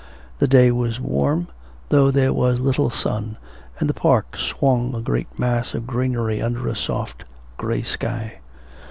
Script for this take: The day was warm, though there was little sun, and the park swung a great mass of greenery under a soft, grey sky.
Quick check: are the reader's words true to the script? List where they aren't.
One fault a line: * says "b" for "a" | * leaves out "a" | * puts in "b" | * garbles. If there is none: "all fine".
all fine